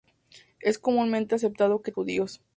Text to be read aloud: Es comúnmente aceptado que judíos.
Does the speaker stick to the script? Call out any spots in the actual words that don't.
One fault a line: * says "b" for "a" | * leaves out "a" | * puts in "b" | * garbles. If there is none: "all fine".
all fine